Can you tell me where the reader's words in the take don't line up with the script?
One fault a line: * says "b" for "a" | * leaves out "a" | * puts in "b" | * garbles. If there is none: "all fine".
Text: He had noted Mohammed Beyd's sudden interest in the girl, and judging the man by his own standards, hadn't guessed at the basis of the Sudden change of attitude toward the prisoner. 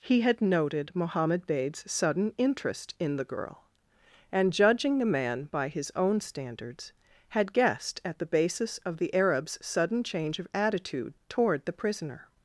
* says "had" for "hadn't"
* puts in "Arab's"